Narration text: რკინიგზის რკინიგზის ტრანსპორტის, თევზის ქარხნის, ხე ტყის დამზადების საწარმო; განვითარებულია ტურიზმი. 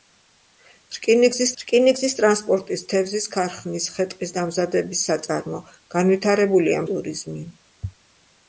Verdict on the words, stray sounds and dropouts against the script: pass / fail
pass